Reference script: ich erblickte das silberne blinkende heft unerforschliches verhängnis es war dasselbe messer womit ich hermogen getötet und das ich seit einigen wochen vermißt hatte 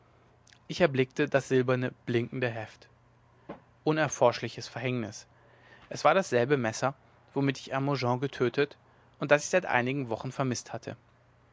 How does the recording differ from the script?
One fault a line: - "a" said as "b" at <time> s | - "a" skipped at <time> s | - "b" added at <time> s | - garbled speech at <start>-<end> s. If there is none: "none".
none